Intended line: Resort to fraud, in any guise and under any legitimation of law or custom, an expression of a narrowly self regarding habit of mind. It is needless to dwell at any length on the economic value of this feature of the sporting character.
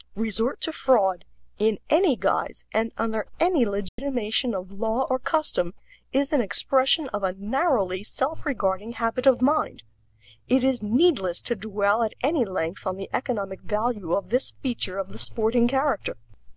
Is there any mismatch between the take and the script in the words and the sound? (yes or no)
yes